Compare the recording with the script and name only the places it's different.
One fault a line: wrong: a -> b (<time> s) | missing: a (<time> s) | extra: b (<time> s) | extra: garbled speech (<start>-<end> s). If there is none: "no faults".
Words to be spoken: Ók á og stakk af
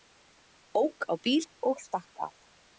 extra: bíl (1.2 s)